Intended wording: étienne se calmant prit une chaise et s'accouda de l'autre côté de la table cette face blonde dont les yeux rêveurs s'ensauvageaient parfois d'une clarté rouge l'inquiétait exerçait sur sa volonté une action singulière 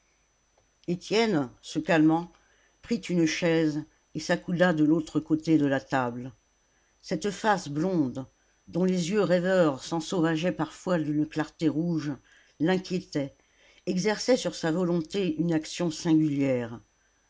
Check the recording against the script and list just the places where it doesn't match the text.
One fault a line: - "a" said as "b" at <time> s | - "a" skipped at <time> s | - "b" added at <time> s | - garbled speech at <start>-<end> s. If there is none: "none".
none